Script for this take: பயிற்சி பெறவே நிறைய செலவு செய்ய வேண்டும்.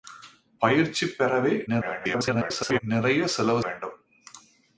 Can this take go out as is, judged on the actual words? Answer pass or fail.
fail